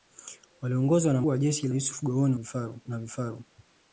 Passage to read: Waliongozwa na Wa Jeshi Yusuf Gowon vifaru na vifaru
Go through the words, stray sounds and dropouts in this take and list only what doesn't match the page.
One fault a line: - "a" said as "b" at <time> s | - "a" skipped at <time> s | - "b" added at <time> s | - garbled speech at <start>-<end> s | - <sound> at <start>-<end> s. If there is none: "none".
none